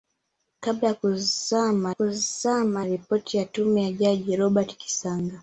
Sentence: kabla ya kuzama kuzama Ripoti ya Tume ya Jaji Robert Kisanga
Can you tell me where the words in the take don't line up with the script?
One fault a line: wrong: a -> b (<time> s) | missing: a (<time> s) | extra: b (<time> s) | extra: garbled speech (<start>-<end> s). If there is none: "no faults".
no faults